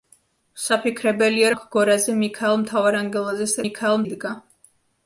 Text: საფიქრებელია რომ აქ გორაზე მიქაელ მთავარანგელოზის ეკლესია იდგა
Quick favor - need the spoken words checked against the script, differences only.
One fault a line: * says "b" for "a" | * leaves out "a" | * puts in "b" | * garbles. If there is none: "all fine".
* leaves out "რომ"
* says "მიქაელ" for "ეკლესია"